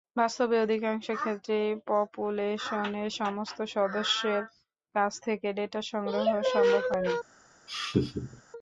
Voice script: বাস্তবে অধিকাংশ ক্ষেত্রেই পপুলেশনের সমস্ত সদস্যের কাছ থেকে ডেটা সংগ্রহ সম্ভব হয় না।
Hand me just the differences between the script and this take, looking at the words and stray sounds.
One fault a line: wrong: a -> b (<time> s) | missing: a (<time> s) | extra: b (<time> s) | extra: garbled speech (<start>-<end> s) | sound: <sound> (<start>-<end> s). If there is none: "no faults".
sound: laugh (7.7-8.4 s)